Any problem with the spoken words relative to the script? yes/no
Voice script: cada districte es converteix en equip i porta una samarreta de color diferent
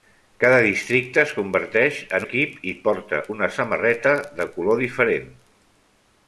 no